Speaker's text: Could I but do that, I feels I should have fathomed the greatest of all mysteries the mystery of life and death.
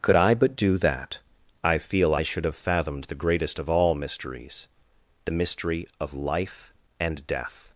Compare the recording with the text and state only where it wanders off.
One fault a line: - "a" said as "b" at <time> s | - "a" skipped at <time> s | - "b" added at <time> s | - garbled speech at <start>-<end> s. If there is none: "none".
- "feels" said as "feel" at 1.8 s